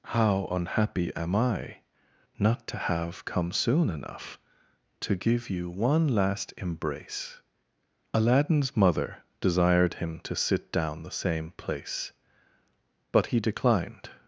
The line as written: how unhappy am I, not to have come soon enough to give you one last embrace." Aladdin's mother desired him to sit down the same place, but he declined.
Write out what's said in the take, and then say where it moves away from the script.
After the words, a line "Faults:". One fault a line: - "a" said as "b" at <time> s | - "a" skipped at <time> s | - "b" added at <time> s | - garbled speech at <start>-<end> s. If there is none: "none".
how unhappy am I, not to have come soon enough to give you one last embrace." Aladdin's mother desired him to sit down the same place, but he declined.
Faults:
none